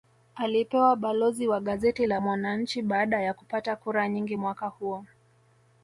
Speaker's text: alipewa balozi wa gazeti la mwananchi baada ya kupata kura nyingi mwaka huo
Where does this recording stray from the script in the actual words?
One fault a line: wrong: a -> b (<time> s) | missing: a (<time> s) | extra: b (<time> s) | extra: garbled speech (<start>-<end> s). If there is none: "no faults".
no faults